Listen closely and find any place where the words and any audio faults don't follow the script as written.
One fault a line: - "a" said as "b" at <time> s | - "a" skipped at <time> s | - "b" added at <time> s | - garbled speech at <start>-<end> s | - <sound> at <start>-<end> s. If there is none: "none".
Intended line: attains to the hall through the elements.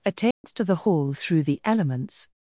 - dropout at 0.3-0.4 s